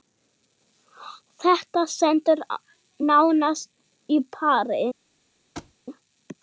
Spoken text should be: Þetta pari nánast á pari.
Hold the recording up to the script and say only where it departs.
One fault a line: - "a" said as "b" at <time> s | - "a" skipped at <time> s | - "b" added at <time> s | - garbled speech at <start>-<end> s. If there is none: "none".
- "pari" said as "stendur" at 2.0 s